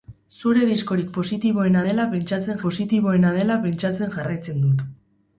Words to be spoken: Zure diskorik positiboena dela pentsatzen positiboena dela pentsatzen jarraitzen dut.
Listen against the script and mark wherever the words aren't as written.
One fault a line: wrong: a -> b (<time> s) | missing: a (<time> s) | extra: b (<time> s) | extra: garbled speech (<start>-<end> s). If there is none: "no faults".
no faults